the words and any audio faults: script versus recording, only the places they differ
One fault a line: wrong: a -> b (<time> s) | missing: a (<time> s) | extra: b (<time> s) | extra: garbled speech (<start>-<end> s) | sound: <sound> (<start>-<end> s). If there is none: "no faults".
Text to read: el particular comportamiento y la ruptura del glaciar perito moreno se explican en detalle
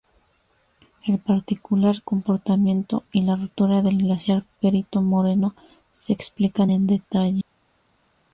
no faults